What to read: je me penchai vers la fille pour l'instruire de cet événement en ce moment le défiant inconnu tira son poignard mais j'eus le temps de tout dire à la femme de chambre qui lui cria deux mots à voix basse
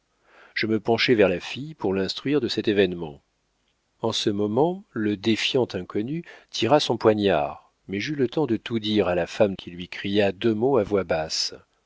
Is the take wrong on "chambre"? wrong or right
wrong